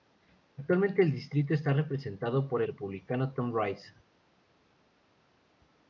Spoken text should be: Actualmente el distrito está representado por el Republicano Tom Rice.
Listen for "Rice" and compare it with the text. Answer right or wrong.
right